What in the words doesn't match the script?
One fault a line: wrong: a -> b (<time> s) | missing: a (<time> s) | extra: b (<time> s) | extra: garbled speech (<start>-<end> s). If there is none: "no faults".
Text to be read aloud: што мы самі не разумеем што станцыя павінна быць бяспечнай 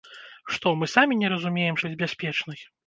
missing: што станцыя павінна (1.8 s)